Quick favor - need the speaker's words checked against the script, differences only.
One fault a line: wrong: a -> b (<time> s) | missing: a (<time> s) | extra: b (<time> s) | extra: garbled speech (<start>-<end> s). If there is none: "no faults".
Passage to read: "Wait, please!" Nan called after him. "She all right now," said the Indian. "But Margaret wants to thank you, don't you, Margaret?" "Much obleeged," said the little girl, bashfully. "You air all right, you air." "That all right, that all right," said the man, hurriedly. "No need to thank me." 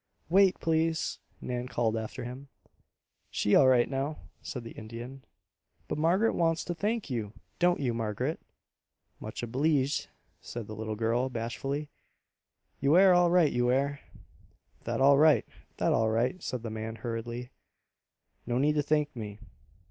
no faults